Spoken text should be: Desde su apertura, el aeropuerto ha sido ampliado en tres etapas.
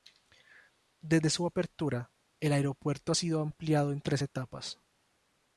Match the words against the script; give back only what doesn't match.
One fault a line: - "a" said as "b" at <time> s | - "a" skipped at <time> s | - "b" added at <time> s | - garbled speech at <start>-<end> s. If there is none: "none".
none